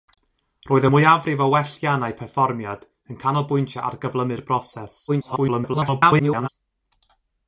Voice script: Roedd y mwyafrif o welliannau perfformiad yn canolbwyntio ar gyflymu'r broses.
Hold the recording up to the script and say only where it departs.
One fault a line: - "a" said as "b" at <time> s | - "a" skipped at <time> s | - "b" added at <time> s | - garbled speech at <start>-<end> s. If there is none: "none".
- garbled speech at 5.1-6.5 s